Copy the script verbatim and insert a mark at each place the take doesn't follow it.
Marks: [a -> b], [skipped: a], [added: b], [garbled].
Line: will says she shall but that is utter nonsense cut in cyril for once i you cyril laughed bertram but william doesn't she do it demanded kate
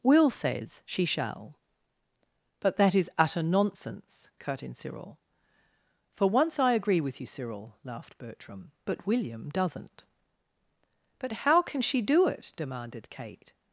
will says she shall but that is utter nonsense cut in cyril for once i [added: agree with] you cyril laughed bertram but william doesn't [added: but how can] she do it demanded kate